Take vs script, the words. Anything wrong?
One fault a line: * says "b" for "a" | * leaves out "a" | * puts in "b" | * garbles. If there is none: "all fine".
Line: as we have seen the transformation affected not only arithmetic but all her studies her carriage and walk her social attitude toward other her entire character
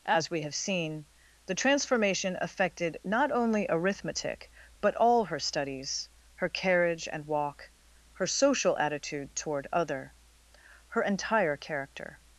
all fine